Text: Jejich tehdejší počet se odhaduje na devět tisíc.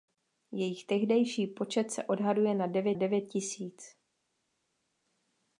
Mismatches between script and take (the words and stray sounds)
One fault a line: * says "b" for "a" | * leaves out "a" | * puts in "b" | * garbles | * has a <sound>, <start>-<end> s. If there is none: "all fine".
* puts in "devět"